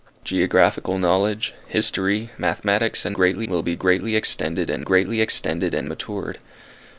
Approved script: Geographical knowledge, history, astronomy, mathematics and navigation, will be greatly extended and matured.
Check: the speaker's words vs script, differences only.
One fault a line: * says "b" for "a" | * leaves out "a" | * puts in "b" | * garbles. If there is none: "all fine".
* leaves out "astronomy"
* says "greatly" for "navigation"
* puts in "greatly extended and"